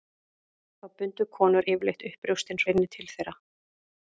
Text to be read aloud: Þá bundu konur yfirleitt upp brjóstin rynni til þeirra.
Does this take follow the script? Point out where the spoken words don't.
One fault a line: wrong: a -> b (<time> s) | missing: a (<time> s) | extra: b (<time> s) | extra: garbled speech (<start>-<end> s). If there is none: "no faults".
no faults